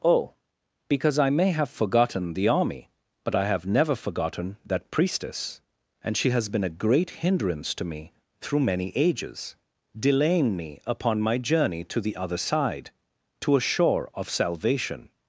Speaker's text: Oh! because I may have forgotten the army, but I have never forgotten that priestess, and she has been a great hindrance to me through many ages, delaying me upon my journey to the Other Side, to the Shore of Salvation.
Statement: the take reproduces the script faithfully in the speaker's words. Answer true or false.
false